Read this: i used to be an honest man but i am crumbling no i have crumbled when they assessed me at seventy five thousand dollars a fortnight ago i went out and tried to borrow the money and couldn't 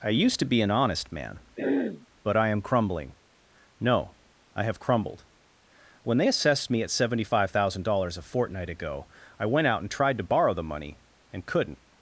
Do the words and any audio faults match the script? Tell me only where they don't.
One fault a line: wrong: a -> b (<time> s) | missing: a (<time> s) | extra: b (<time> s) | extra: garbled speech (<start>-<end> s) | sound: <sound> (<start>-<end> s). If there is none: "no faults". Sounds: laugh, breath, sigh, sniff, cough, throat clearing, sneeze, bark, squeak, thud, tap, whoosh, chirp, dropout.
sound: throat clearing (1.6-2.1 s)